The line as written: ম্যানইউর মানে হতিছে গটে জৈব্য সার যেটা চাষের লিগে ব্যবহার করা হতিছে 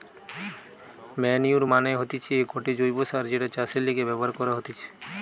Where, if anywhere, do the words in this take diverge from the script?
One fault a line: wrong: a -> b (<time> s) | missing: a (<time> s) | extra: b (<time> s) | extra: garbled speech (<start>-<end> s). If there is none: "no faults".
no faults